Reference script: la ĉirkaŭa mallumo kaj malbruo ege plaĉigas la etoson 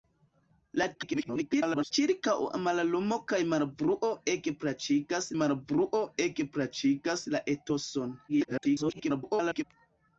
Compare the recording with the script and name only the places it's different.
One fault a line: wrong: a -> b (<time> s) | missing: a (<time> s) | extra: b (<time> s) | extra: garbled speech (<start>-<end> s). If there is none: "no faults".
extra: garbled speech (0.9-1.9 s)
extra: malbruo ege plaĉigas (5.4 s)
extra: garbled speech (8.3-9.6 s)